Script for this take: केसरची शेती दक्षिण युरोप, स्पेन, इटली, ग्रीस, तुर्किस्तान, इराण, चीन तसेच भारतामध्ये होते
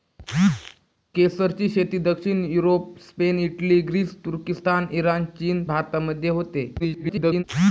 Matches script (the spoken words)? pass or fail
fail